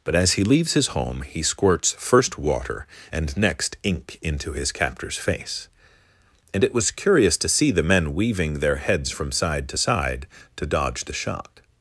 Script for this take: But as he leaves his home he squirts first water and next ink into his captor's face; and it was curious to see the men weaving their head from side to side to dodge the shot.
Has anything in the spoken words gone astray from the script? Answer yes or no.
yes